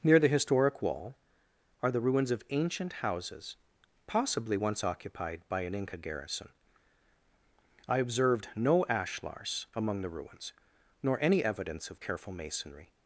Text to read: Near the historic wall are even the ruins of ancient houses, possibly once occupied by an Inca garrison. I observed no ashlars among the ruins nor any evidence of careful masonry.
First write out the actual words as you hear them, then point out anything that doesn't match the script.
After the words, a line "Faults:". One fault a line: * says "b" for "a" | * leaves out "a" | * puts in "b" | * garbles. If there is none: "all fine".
Near the historic wall are the ruins of ancient houses, possibly once occupied by an Inca garrison. I observed no ashlars among the ruins nor any evidence of careful masonry.
Faults:
* leaves out "even"